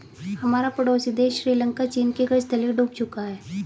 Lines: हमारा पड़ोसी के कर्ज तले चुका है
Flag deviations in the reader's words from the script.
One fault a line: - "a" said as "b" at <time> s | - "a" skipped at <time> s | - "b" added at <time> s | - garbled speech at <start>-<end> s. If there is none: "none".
- "देश श्रीलंका चीन" added at 1.1 s
- "डूब" added at 2.7 s